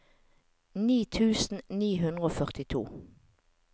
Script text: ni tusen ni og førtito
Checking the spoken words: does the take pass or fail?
fail